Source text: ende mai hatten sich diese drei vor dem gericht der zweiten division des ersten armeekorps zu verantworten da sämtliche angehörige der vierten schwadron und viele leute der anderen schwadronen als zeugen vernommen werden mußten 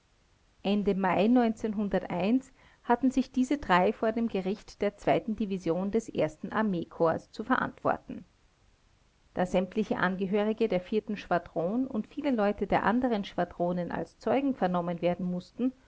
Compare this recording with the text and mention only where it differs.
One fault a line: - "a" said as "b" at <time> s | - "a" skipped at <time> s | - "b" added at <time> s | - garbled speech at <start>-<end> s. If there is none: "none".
none